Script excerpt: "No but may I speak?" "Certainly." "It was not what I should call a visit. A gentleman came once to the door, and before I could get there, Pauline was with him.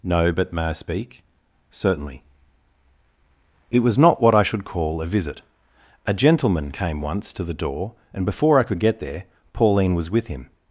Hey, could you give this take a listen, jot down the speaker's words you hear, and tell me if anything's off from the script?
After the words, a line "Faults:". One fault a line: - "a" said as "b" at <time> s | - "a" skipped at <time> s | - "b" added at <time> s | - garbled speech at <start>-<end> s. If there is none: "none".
"No but may I speak?" "Certainly." "It was not what I should call a visit. A gentleman came once to the door, and before I could get there, Pauline was with him.
Faults:
none